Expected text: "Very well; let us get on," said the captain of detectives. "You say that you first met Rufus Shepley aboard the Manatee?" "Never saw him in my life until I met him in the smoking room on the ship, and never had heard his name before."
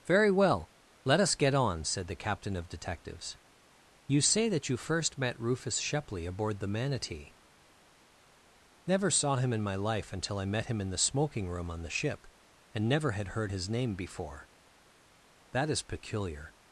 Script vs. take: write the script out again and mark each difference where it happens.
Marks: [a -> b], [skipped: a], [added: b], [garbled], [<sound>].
"Very well; let us get on," said the captain of detectives. "You say that you first met Rufus Shepley aboard the Manatee?" "Never saw him in my life until I met him in the smoking room on the ship, and never had heard his name before." [added: That is peculiar]